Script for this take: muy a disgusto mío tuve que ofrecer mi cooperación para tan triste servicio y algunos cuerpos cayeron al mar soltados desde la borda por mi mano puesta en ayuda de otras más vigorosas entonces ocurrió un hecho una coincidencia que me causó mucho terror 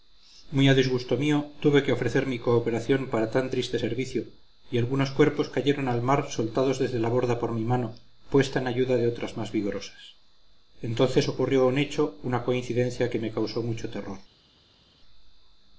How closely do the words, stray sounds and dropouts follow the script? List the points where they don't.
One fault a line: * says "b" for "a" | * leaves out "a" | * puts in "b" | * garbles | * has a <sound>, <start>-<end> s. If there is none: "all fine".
all fine